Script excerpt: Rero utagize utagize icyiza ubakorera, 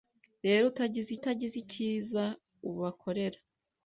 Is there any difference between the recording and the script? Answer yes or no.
no